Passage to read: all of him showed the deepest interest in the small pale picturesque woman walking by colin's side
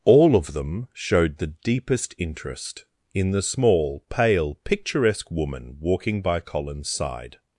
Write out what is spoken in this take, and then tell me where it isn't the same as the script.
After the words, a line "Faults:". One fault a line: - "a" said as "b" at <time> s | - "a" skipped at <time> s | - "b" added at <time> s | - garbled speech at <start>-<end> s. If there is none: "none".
all of them showed the deepest interest in the small pale picturesque woman walking by colin's side
Faults:
- "him" said as "them" at 0.5 s